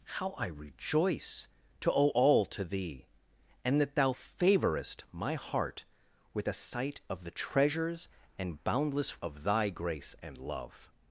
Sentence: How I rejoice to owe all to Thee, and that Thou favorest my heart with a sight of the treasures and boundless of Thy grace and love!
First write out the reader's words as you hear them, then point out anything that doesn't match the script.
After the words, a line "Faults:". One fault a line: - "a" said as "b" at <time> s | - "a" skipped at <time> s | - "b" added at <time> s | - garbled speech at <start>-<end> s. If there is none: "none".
How I rejoice to owe all to Thee, and that Thou favorest my heart with a sight of the treasures and boundless of Thy grace and love!
Faults:
none